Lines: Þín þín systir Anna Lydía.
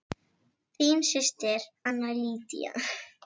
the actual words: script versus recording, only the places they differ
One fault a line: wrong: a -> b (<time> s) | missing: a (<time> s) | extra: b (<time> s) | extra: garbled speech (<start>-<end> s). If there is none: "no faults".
missing: þín (1.0 s)